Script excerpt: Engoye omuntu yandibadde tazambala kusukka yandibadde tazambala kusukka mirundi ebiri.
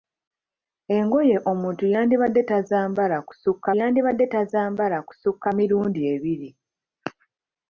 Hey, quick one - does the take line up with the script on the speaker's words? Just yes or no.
yes